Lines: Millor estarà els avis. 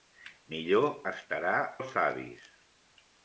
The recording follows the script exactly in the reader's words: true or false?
true